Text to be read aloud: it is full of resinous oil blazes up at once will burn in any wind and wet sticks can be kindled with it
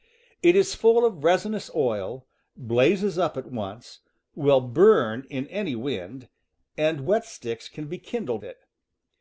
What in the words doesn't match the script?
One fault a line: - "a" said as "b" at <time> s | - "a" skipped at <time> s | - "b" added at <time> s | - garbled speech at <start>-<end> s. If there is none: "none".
- "with" skipped at 8.4 s